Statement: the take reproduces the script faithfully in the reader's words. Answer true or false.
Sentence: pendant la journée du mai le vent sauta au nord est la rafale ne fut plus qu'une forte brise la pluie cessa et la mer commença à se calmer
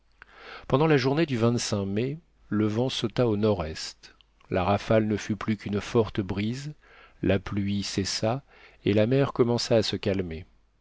true